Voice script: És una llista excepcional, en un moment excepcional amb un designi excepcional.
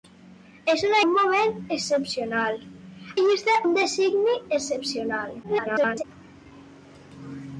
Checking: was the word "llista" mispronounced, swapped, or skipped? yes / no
yes